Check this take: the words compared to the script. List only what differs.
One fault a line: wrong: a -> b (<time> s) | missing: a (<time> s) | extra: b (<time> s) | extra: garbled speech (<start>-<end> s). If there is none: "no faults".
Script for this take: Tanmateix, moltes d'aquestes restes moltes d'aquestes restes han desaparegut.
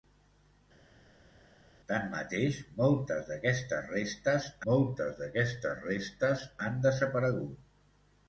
no faults